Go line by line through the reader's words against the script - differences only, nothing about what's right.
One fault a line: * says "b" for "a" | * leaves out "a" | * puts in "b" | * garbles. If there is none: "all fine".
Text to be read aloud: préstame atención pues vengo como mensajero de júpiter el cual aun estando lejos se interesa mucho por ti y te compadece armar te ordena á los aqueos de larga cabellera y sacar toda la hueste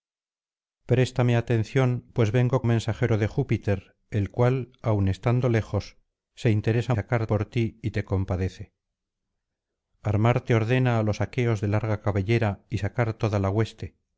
* leaves out "como"
* says "sacar" for "mucho"